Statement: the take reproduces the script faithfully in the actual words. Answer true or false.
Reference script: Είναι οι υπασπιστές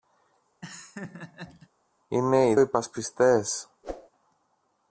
true